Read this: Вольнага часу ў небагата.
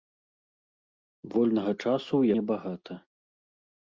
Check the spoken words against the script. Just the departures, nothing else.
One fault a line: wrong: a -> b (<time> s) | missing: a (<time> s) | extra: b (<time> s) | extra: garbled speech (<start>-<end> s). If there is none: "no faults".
no faults